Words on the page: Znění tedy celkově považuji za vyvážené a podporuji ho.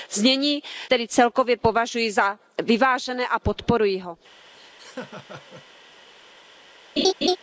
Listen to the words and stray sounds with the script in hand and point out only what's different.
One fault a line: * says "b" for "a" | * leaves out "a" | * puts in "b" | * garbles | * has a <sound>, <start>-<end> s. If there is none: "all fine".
* has a laugh, 4.5-5.7 s
* has a laugh, 7.0-7.4 s